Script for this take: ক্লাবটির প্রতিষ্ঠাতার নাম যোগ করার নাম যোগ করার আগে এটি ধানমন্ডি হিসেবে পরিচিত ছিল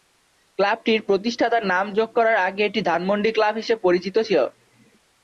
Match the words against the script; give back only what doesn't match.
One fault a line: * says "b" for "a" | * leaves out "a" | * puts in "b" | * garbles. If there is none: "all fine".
* leaves out "নাম যোগ করার"
* puts in "ক্লাব"